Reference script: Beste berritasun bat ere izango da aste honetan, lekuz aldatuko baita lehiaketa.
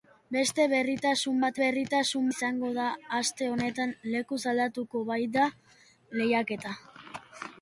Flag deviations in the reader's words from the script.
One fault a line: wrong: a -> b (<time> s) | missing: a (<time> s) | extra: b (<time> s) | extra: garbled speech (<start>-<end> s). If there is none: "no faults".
wrong: ere -> berritasun (1.6 s)